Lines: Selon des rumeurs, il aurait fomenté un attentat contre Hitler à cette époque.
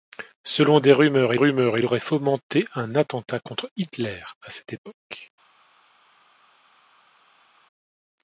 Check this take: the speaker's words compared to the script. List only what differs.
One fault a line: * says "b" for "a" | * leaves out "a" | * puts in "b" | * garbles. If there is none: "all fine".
* puts in "rumeurs"